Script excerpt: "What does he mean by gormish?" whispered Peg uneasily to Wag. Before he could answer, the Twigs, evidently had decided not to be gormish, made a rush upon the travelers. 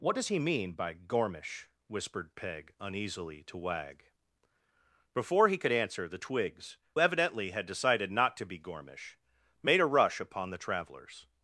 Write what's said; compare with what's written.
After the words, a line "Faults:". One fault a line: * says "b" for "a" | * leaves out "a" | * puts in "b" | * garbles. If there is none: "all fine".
"What does he mean by gormish?" whispered Peg uneasily to Wag. Before he could answer, the Twigs, evidently had decided not to be gormish, made a rush upon the travelers.
Faults:
all fine